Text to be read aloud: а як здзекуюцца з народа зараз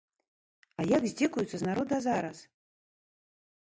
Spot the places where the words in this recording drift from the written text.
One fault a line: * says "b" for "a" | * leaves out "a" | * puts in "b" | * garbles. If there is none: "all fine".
all fine